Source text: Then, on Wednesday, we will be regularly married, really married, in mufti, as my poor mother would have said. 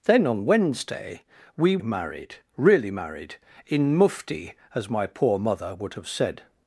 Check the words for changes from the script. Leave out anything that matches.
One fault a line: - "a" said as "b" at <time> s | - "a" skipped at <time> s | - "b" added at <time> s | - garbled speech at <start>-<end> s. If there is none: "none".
- "will be regularly" skipped at 1.8 s